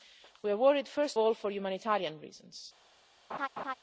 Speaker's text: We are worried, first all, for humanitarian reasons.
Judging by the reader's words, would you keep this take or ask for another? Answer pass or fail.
pass